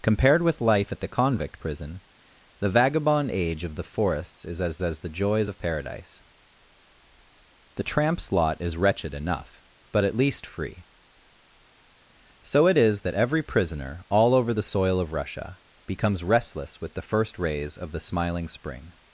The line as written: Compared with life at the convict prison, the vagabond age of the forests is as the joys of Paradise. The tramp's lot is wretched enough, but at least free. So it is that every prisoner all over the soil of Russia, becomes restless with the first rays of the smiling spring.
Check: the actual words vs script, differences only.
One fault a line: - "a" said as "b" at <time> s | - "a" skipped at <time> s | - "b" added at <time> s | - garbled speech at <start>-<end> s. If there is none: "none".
- "as" added at 4.8 s